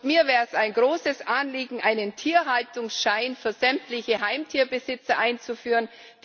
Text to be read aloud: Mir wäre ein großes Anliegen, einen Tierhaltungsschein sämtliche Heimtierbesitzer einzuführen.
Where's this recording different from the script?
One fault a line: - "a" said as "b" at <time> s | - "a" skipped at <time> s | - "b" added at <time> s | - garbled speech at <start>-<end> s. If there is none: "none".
- "es" added at 0.5 s
- "für" added at 3.3 s